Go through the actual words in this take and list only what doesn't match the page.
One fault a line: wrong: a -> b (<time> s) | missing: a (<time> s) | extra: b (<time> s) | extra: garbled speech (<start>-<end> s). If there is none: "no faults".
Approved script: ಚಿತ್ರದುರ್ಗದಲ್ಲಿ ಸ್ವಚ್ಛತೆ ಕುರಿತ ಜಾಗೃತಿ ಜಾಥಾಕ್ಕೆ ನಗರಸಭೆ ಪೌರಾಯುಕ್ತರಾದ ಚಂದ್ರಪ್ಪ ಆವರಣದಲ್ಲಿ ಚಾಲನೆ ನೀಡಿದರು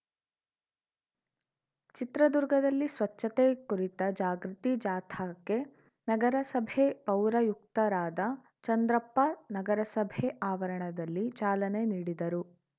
extra: ನಗರಸಭೆ (9.5 s)